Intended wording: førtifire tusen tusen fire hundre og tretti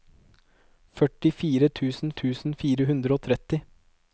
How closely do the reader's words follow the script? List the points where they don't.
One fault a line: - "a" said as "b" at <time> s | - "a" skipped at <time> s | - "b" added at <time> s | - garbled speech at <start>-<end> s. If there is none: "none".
none